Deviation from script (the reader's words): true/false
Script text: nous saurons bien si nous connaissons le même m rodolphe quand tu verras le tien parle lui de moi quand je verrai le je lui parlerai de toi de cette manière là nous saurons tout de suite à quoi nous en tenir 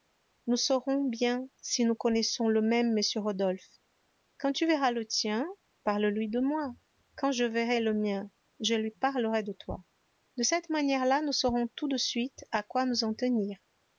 true